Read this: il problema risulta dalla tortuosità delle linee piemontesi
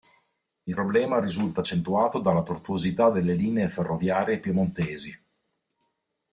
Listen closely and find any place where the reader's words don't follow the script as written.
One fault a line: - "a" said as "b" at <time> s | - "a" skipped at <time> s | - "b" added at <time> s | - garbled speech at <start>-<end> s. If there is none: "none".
- "accentuato" added at 1.6 s
- "ferroviarie" added at 3.7 s